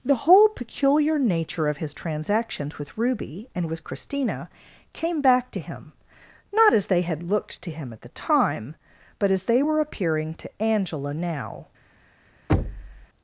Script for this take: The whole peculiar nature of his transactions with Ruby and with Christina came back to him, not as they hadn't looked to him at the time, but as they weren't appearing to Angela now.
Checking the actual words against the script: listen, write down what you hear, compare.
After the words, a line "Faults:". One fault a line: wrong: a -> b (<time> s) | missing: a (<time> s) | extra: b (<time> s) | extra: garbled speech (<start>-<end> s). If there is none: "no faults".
The whole peculiar nature of his transactions with Ruby and with Christina came back to him, not as they had looked to him at the time, but as they were appearing to Angela now.
Faults:
wrong: hadn't -> had (7.0 s)
wrong: weren't -> were (9.6 s)